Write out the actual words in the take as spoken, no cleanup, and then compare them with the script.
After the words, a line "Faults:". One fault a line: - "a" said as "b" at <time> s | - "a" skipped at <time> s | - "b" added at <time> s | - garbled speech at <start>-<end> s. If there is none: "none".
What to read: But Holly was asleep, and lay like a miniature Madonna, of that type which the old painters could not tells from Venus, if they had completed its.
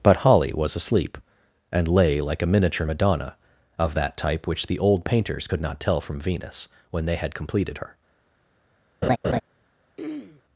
But Holly was asleep, and lay like a miniature Madonna, of that type which the old painters could not tell from Venus, when they had completed her.
Faults:
- "tells" said as "tell" at 5.8 s
- "if" said as "when" at 6.9 s
- "its" said as "her" at 7.8 s